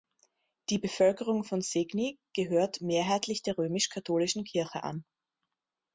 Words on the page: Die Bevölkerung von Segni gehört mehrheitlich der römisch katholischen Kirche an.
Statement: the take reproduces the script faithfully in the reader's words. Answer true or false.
true